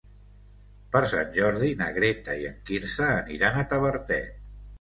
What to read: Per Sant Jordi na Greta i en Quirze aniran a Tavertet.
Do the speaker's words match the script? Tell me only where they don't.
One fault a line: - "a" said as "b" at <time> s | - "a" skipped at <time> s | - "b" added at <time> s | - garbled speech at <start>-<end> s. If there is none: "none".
none